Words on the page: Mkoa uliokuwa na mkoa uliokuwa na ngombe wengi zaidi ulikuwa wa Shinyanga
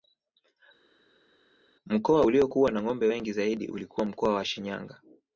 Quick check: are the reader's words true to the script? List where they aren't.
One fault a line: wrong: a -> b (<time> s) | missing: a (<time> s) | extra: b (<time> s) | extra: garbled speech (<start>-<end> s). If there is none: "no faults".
missing: mkoa uliokuwa na (2.8 s)
extra: mkoa (4.1 s)